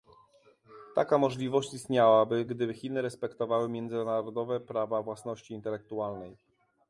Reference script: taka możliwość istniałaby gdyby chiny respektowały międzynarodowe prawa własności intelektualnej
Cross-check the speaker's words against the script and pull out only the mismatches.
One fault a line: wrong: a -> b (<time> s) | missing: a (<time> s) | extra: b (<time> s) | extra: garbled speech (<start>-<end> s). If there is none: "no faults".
no faults